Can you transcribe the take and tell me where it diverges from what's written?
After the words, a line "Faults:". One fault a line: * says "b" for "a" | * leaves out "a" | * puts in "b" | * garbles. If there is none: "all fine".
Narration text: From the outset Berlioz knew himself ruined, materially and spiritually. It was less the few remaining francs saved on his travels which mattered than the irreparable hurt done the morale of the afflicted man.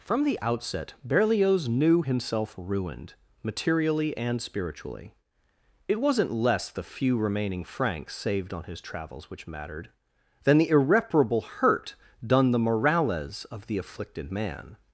From the outset Berlioz knew himself ruined, materially and spiritually. It wasn't less the few remaining francs saved on his travels which mattered than the irreparable hurt done the morales of the afflicted man.
Faults:
* says "wasn't" for "was"
* says "morales" for "morale"